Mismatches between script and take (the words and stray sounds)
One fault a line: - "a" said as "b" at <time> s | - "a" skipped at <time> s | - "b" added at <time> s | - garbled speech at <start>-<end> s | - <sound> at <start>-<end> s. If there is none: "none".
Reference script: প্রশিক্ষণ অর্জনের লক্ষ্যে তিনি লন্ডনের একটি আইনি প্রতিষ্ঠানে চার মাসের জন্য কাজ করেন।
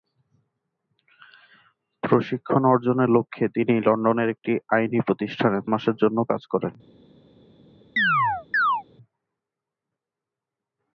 - "চার" skipped at 5.6 s
- chirp at 8.0-8.8 s